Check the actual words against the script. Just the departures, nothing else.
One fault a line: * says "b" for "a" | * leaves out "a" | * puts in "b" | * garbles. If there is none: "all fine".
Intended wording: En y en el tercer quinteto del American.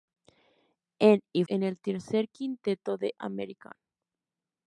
all fine